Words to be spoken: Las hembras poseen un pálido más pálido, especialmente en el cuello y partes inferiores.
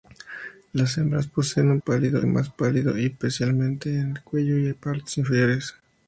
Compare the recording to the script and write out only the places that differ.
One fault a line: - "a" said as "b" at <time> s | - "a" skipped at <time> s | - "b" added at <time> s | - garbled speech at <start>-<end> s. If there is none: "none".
none